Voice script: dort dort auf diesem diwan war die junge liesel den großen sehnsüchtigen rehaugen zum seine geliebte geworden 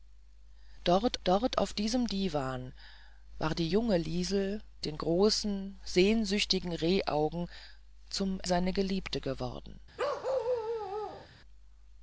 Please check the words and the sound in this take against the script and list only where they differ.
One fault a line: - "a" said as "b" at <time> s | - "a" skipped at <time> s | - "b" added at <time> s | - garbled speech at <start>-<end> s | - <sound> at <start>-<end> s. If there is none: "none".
- bark at 10.0-11.3 s